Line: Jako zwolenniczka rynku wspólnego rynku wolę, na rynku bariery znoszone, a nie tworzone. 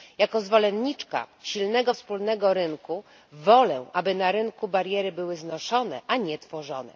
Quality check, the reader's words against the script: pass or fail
fail